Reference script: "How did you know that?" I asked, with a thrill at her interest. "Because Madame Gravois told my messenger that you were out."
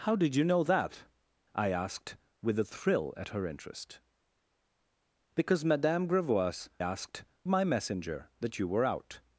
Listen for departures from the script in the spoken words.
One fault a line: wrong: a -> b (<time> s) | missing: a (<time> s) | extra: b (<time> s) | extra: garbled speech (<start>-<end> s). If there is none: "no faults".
wrong: told -> asked (6.8 s)